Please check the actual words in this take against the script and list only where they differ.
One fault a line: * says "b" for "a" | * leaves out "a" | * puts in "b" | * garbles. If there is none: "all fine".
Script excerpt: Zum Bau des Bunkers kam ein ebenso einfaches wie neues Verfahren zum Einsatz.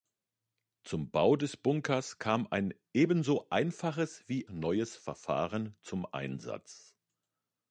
all fine